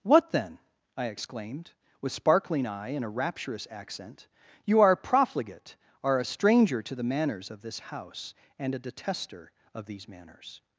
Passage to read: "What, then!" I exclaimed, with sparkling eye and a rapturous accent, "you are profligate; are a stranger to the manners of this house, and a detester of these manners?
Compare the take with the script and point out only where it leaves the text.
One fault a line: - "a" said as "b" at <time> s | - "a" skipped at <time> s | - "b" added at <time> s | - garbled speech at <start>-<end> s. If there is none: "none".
none